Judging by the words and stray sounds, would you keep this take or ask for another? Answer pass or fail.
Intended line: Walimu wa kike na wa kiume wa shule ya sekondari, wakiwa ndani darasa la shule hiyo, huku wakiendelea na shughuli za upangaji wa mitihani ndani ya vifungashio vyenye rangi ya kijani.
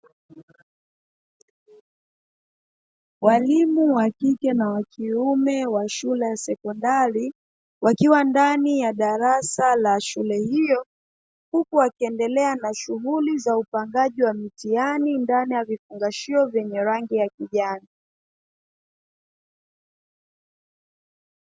fail